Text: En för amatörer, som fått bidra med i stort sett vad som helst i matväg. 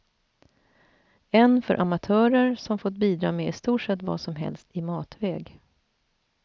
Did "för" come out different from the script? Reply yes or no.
no